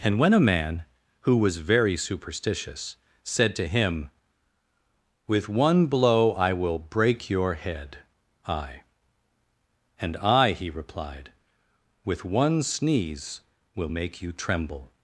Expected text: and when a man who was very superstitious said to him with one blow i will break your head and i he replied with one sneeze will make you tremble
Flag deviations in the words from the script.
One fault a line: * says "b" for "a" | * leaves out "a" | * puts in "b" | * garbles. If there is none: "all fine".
* puts in "i"